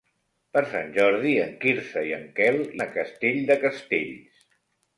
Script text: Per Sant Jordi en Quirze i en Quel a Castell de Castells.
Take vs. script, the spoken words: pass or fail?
pass